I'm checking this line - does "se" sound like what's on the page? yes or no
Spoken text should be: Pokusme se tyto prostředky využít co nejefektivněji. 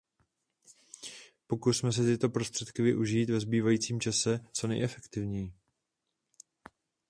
yes